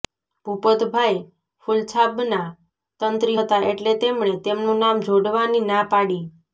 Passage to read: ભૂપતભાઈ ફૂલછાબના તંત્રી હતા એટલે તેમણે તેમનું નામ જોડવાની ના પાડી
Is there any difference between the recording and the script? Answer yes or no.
no